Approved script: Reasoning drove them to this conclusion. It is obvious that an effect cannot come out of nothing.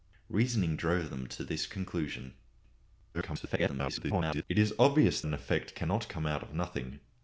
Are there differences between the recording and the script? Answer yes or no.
yes